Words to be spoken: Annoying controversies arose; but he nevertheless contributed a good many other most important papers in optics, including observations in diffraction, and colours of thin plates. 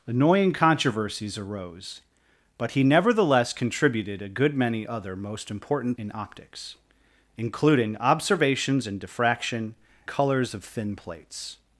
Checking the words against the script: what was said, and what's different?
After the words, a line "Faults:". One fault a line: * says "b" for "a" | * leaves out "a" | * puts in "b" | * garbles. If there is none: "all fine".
Annoying controversies arose; but he nevertheless contributed a good many other most important in optics, including observations in diffraction, colours of thin plates.
Faults:
* leaves out "papers"
* leaves out "and"